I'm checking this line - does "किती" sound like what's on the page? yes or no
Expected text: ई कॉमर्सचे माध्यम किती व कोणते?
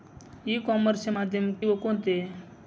no